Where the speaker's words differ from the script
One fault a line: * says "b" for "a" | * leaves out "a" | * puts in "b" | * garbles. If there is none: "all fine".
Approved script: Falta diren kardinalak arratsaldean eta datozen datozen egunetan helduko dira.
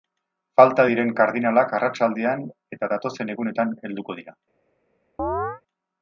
* leaves out "datozen"